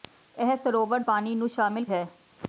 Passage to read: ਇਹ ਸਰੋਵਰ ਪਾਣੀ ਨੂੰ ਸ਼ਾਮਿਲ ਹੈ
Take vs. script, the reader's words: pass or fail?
pass